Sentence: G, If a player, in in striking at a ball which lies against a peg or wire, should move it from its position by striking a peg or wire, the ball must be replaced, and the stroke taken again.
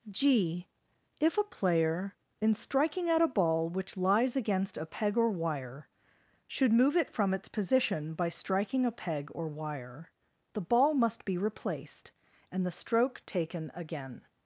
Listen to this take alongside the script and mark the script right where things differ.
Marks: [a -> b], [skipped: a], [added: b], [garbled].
G, If a player, in [skipped: in] striking at a ball which lies against a peg or wire, should move it from its position by striking a peg or wire, the ball must be replaced, and the stroke taken again.